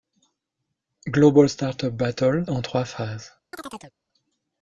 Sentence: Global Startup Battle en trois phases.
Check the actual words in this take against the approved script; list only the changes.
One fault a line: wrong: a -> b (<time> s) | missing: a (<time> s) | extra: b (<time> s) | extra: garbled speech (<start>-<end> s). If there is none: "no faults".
no faults